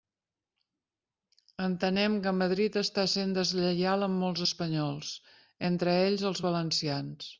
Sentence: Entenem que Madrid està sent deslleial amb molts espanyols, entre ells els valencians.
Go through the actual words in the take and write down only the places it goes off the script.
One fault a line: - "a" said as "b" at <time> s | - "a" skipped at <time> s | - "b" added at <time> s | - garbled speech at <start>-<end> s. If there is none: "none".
none